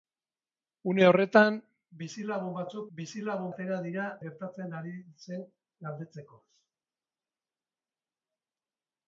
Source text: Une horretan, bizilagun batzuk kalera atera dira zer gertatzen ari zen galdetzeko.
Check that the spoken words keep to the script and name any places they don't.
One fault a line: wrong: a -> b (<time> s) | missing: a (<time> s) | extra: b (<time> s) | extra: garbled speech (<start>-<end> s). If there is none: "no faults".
wrong: kalera -> bizilagun (3.0 s)
missing: zer (4.1 s)